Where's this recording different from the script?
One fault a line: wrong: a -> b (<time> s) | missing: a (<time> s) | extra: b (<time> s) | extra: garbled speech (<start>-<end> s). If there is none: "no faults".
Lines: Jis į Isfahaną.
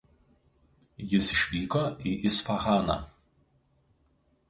extra: išvyko (1.3 s)